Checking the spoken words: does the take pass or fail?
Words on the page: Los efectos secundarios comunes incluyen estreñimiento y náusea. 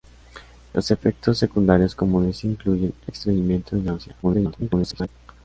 fail